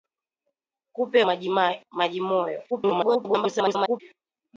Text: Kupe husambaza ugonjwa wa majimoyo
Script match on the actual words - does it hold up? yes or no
no